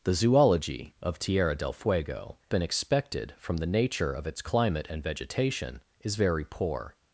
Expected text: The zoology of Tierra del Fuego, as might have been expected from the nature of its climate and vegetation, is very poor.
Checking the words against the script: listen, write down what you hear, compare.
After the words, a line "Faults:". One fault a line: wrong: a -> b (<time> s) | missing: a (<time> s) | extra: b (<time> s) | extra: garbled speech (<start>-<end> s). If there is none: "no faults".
The zoology of Tierra del Fuego, been expected from the nature of its climate and vegetation, is very poor.
Faults:
missing: as might have (2.4 s)